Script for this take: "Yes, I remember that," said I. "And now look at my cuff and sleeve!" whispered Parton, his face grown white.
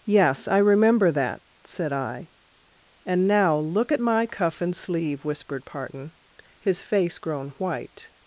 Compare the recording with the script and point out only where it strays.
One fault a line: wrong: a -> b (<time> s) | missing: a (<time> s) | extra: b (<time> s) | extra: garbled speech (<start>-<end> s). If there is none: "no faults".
no faults